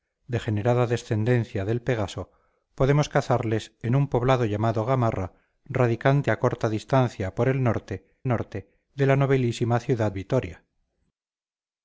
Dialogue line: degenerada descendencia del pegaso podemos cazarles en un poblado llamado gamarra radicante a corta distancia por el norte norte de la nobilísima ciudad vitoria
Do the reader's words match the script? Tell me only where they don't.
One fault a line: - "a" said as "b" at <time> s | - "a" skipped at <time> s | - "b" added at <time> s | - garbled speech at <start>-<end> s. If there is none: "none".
none